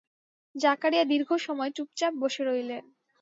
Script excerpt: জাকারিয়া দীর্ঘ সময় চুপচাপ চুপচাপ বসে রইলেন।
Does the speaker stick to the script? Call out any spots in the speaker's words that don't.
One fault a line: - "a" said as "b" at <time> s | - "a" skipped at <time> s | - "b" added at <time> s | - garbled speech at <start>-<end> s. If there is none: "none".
- "চুপচাপ" skipped at 2.1 s